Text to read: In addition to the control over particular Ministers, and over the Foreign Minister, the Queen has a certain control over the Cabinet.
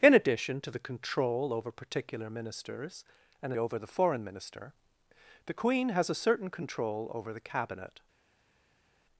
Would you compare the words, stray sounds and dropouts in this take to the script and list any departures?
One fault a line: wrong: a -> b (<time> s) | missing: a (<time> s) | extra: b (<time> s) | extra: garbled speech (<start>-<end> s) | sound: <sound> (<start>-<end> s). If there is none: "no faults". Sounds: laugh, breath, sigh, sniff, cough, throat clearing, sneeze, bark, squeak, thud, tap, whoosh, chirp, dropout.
no faults